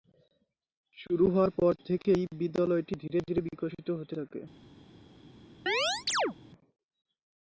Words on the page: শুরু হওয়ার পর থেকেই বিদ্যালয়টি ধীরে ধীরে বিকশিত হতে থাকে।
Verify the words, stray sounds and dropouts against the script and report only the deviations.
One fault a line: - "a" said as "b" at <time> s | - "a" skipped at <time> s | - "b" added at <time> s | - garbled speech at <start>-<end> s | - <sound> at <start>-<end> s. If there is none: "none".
- chirp at 5.7-6.4 s